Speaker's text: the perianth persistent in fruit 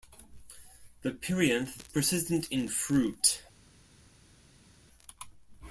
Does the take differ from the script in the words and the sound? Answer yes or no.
no